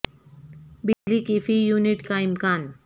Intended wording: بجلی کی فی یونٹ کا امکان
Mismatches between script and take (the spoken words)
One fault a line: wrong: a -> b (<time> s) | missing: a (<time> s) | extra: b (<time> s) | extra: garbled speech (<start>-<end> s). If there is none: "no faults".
no faults